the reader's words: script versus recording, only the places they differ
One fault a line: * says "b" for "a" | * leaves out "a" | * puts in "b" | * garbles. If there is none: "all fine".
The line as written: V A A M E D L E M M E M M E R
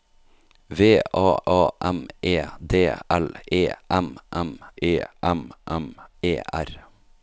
all fine